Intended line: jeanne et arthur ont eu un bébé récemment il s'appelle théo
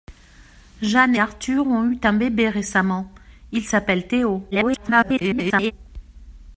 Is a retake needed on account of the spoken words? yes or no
yes